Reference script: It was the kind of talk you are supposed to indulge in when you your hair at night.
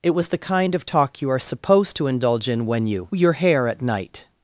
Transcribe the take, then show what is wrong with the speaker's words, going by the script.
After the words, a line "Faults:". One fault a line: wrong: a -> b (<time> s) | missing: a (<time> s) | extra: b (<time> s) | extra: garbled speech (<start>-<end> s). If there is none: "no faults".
It was the kind of talk you are supposed to indulge in when you your hair at night.
Faults:
no faults